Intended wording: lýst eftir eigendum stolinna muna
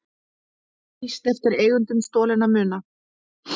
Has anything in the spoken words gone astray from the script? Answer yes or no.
no